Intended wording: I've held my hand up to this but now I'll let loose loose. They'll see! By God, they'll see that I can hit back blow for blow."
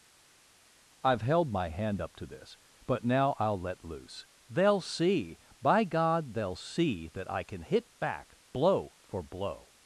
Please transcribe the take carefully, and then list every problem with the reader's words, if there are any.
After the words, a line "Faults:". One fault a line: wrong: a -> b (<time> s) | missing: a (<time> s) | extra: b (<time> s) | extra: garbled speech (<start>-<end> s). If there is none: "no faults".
I've held my hand up to this but now I'll let loose. They'll see! By God, they'll see that I can hit back blow for blow."
Faults:
missing: loose (4.3 s)